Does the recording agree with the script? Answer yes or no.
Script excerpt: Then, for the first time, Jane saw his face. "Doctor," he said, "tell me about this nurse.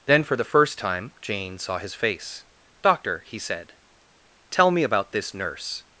yes